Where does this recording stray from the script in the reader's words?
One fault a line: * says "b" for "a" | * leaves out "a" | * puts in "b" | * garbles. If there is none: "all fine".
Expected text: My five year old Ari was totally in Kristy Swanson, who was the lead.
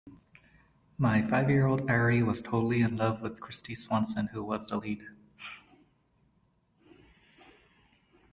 * puts in "love with"